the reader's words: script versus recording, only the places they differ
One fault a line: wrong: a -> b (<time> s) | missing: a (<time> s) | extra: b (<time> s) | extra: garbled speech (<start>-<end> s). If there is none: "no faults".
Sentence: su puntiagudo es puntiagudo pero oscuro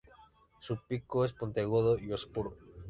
wrong: puntiagudo -> pico (0.9 s)
wrong: pero -> y (2.0 s)